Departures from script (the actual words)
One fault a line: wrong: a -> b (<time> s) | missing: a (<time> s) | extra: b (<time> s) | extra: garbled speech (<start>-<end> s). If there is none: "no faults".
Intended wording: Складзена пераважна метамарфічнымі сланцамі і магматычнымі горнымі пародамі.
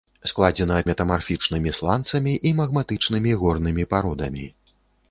missing: пераважна (0.8 s)